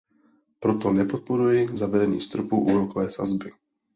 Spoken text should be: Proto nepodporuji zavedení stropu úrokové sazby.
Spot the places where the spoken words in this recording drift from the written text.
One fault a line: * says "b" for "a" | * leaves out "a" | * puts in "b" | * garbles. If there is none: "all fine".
all fine